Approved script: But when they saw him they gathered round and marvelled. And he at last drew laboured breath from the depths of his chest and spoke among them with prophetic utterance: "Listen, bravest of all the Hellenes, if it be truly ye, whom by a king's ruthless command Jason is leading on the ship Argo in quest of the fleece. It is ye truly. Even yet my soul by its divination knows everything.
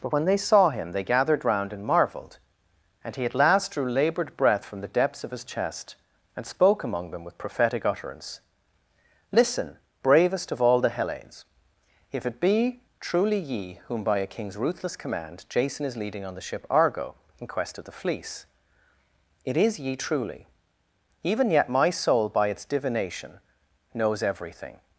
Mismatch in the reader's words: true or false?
false